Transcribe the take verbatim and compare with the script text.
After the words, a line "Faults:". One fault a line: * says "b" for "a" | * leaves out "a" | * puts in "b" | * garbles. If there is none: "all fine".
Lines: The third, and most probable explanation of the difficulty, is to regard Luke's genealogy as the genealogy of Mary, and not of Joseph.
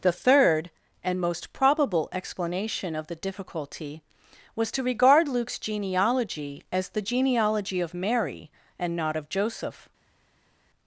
The third, and most probable explanation of the difficulty, was to regard Luke's genealogy as the genealogy of Mary, and not of Joseph.
Faults:
* says "was" for "is"